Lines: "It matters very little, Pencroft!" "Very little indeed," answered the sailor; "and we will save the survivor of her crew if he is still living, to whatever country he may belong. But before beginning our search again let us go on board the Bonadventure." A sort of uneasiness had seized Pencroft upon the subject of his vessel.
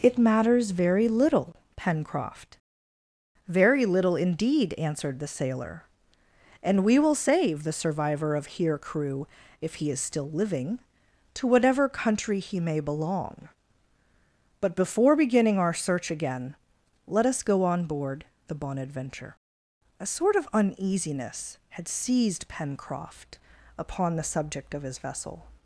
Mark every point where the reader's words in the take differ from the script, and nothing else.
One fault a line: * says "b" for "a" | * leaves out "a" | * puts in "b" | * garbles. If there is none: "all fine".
* says "here" for "her"